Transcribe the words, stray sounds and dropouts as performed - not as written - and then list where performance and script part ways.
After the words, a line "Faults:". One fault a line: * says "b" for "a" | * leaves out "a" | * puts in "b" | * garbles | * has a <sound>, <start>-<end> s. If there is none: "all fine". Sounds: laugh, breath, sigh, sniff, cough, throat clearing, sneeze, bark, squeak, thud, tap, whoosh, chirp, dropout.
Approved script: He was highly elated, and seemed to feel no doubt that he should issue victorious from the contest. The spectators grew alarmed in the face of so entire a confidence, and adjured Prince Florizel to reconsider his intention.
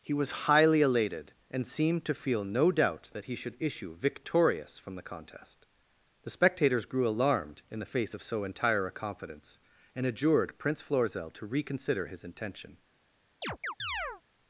He was highly elated, and seemed to feel no doubt that he should issue victorious from the contest. The spectators grew alarmed in the face of so entire a confidence, and adjured Prince Florizel to reconsider his intention.
Faults:
* has a chirp, 13.4-14.2 s